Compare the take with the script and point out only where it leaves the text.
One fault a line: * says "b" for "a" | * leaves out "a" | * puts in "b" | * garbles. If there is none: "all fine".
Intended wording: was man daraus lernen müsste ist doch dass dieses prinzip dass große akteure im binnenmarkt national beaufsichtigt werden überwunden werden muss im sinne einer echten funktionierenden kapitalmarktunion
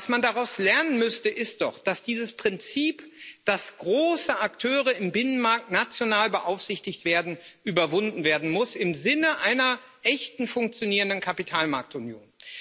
all fine